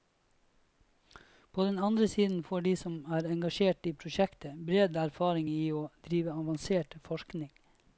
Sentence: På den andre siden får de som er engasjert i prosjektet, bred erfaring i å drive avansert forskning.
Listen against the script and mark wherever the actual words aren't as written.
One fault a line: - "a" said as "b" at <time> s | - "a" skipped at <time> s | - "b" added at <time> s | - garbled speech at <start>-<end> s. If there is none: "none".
none